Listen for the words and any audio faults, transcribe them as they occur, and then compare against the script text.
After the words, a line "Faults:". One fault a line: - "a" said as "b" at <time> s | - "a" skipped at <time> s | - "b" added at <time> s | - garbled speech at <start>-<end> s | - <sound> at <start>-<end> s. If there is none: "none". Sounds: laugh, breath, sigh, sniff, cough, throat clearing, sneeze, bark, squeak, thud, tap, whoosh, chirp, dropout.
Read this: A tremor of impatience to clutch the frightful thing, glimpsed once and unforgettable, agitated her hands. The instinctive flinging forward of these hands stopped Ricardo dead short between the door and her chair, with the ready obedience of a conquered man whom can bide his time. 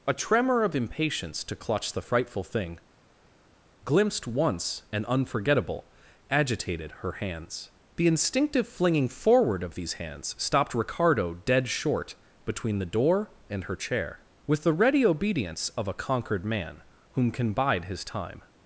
A tremor of impatience to clutch the frightful thing, glimpsed once and unforgettable, agitated her hands. The instinctive flinging forward of these hands stopped Ricardo dead short between the door and her chair, with the ready obedience of a conquered man whom can bide his time.
Faults:
none